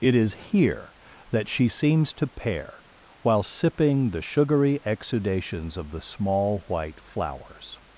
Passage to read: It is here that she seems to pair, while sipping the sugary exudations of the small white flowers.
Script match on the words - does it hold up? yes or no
yes